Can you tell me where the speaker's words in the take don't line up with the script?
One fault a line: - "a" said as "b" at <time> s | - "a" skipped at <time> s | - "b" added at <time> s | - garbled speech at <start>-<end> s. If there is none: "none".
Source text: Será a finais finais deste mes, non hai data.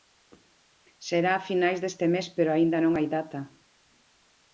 - "finais" skipped at 1.8 s
- "pero aínda" added at 2.4 s